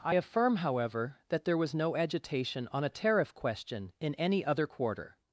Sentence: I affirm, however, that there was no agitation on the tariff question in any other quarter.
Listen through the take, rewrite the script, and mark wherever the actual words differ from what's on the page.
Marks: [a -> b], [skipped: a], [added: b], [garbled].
I affirm, however, that there was no agitation on [the -> a] tariff question in any other quarter.